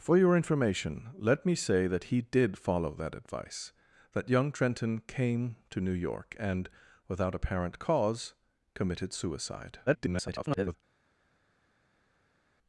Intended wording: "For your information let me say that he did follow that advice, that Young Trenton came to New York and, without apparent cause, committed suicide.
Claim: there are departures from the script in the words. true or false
true